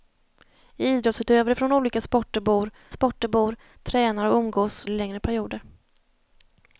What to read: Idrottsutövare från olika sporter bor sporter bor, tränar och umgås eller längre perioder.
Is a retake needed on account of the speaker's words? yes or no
no